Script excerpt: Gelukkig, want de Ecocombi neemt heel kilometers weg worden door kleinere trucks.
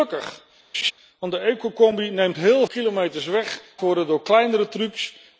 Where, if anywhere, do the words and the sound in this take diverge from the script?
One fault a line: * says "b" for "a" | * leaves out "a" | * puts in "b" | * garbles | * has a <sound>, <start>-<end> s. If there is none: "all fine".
* has a laugh, 0.7-0.9 s